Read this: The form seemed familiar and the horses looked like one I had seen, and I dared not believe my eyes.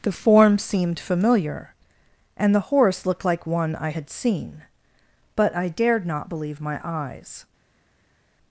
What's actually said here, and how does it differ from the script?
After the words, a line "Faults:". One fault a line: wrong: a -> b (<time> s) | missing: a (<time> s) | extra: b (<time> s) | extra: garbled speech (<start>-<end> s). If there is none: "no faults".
The form seemed familiar and the horse looked like one I had seen, but I dared not believe my eyes.
Faults:
wrong: horses -> horse (2.6 s)
wrong: and -> but (5.3 s)